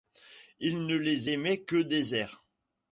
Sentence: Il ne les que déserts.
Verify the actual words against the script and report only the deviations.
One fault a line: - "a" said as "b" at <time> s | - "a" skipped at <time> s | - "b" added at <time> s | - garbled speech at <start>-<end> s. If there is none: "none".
- "aimait" added at 1.3 s